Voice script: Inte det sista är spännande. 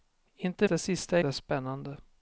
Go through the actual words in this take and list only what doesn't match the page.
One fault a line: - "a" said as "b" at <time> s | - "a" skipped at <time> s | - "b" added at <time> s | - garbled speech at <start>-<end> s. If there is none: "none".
none